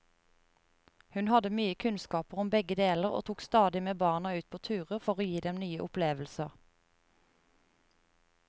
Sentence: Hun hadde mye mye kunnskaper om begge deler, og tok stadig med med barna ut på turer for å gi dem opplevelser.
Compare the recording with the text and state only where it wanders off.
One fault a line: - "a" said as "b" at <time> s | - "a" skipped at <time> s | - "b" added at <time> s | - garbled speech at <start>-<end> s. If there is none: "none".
- "mye" skipped at 1.8 s
- "med" skipped at 4.0 s
- "nye" added at 5.6 s